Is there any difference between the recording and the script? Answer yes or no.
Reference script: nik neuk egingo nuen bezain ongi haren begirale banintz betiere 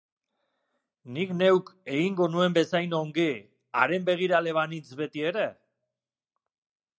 no